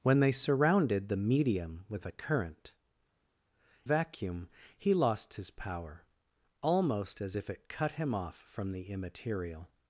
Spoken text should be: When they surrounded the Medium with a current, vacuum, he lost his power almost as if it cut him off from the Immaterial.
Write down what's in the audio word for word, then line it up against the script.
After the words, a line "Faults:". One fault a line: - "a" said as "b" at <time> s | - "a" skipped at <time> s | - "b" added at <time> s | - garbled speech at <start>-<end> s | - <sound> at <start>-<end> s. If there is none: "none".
When they surrounded the Medium with a current, vacuum, he lost his power almost as if it cut him off from the Immaterial.
Faults:
none